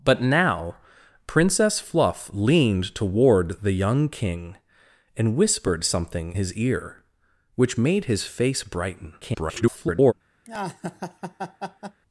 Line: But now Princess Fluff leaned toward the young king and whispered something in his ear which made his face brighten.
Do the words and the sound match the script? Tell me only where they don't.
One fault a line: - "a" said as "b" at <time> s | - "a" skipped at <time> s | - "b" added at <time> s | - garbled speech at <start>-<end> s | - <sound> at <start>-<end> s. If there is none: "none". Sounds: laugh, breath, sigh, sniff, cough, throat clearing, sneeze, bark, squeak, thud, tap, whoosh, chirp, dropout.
- "in" skipped at 6.3 s
- garbled speech at 9.2-10.1 s
- laugh at 10.4-12.0 s